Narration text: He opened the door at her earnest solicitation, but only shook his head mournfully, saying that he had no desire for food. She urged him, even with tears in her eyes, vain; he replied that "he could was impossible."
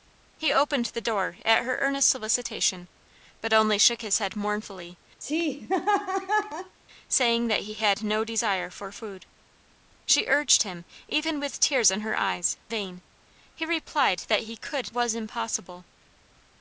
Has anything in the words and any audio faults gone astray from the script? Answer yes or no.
yes